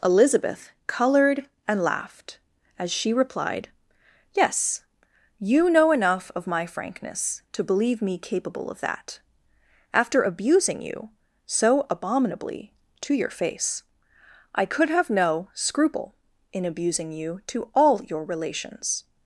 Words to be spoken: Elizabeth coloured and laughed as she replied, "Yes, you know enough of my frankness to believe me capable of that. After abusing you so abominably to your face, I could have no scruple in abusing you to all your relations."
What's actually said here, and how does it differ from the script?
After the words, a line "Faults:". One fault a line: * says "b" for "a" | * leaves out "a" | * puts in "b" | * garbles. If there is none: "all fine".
Elizabeth coloured and laughed as she replied, "Yes, you know enough of my frankness to believe me capable of that. After abusing you so abominably to your face, I could have no scruple in abusing you to all your relations."
Faults:
all fine